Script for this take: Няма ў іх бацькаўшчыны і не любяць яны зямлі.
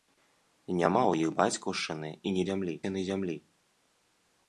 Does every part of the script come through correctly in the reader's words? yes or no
no